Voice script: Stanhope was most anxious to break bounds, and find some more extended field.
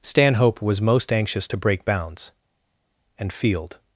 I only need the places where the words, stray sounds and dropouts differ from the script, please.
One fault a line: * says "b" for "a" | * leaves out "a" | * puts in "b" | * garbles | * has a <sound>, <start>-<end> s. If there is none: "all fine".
* leaves out "find some more extended"